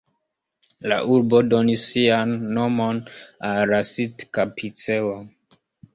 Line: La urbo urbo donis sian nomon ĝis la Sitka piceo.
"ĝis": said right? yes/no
no